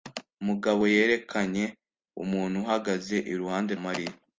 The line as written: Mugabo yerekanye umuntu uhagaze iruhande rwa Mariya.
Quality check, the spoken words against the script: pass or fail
fail